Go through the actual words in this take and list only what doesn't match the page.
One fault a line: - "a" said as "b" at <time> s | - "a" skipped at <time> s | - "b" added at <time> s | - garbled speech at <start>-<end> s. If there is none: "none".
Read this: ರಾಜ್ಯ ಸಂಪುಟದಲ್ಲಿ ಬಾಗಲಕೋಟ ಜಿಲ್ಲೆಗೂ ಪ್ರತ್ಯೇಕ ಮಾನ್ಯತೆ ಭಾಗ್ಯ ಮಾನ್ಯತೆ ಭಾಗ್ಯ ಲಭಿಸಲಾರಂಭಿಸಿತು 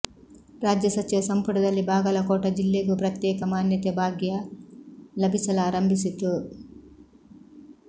- "ಸಚಿವ" added at 0.9 s
- "ಮಾನ್ಯತೆ ಭಾಗ್ಯ" skipped at 4.3 s